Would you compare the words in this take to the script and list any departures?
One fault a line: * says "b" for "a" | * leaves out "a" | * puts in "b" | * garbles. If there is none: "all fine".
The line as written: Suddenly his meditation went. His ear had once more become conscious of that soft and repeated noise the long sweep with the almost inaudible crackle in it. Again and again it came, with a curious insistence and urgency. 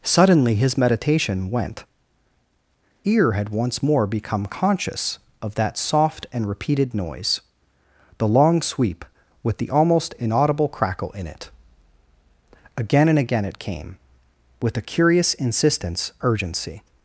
* leaves out "His"
* leaves out "and"